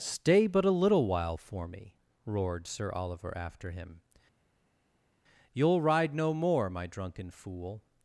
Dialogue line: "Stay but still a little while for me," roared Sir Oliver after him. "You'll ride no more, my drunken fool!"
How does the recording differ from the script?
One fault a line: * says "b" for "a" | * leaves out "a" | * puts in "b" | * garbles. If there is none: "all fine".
* leaves out "still"